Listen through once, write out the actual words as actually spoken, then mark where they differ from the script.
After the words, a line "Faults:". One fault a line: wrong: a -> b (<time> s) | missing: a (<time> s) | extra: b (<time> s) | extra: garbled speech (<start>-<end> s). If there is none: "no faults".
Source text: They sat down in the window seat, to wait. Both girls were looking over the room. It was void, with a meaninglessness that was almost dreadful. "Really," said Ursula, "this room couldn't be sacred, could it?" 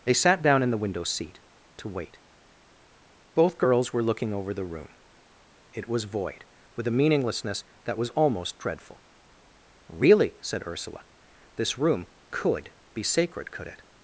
They sat down in the window seat, to wait. Both girls were looking over the room. It was void, with a meaninglessness that was almost dreadful. "Really," said Ursula, "this room could be sacred, could it?"
Faults:
wrong: couldn't -> could (12.3 s)